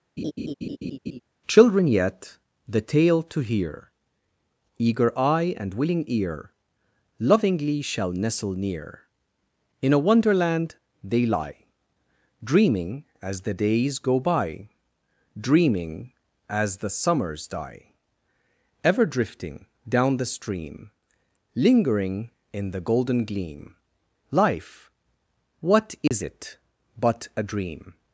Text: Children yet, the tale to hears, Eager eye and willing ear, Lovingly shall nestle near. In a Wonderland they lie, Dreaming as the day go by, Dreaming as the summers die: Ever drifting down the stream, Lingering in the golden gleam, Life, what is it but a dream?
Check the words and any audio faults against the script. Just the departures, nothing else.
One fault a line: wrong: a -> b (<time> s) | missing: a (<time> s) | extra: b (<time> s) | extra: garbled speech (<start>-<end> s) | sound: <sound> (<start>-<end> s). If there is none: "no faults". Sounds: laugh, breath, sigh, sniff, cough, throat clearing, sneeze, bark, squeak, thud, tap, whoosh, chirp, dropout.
sound: laugh (0.2-1.2 s)
wrong: hears -> hear (3.4 s)
wrong: day -> days (13.5 s)
sound: dropout (26.1-26.1 s)